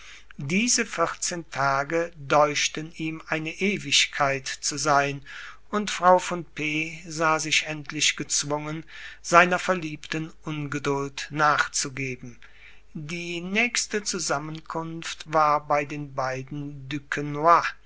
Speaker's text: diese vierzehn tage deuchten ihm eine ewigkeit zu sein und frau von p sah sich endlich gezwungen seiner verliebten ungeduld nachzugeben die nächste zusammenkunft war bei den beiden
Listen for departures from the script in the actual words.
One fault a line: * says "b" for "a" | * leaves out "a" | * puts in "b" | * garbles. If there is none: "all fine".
all fine